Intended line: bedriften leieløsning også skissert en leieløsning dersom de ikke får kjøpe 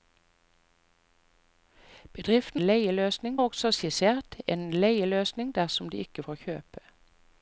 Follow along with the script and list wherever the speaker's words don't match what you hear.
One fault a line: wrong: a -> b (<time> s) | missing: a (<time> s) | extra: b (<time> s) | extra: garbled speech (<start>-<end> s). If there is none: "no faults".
no faults